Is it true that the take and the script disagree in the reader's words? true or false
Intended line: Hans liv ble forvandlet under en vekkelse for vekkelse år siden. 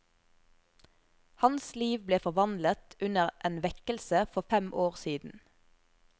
true